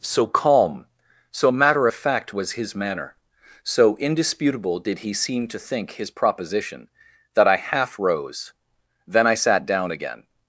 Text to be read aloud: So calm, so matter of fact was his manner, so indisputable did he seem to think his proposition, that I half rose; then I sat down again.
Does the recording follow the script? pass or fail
pass